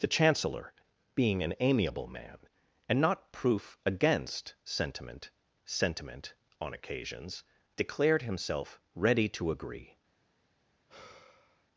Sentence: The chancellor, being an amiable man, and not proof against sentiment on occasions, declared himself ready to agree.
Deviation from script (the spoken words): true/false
true